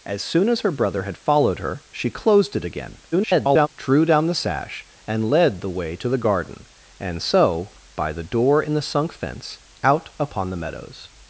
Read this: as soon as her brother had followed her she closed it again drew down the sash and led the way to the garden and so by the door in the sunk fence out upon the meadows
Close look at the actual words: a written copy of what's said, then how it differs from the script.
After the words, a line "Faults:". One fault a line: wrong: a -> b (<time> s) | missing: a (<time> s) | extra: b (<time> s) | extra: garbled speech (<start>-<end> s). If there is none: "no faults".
as soon as her brother had followed her she closed it again [garbled] drew down the sash and led the way to the garden and so by the door in the sunk fence out upon the meadows
Faults:
extra: garbled speech (3.1-3.7 s)